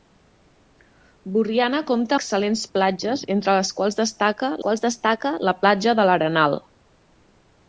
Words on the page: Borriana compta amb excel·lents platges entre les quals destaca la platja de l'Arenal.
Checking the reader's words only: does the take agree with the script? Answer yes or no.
no